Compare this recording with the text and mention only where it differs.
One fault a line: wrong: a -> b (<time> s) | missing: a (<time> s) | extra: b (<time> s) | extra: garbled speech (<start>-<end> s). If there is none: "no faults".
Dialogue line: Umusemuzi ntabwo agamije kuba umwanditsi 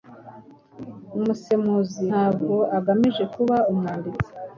no faults